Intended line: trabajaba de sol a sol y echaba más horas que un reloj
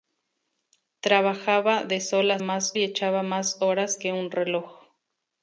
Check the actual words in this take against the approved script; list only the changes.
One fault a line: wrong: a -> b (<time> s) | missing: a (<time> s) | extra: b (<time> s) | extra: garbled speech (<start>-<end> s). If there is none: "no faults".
wrong: sol -> más (2.4 s)